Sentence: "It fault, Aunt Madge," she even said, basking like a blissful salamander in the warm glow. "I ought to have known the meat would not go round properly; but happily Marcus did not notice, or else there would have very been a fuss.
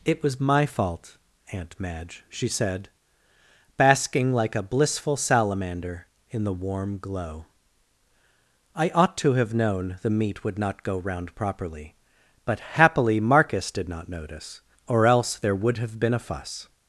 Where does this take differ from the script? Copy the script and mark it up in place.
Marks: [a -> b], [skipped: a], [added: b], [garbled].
"It [added: was my] fault, Aunt Madge," she [skipped: even] said, basking like a blissful salamander in the warm glow. "I ought to have known the meat would not go round properly; but happily Marcus did not notice, or else there would have [skipped: very] been a fuss.